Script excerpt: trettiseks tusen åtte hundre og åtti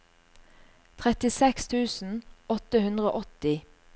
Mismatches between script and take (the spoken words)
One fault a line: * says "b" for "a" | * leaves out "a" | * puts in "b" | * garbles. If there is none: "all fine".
all fine